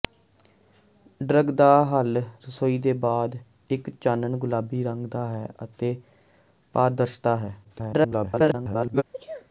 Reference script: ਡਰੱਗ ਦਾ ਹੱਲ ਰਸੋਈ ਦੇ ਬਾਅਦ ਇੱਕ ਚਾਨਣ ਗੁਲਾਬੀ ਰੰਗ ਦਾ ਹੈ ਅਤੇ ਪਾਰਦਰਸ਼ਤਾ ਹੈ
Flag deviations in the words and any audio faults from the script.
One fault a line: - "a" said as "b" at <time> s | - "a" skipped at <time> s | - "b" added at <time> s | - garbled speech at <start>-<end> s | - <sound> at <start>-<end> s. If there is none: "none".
- garbled speech at 7.6-9.0 s
- sneeze at 9.1-9.5 s